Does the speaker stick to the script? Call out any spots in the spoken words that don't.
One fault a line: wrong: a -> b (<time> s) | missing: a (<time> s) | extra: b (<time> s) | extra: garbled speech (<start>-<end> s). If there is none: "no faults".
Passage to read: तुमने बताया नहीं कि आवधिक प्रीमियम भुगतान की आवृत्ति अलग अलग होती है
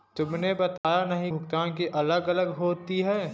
missing: कि आवधिक प्रीमियम (1.3 s)
missing: आवृत्ति (1.9 s)